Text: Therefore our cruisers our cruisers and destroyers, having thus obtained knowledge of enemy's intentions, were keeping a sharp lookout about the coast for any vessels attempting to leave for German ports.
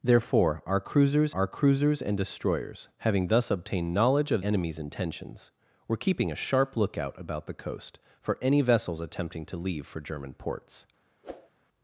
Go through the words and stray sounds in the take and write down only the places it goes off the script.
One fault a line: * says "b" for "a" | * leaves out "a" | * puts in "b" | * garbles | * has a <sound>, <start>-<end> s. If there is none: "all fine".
* has a whoosh, 11.2-11.5 s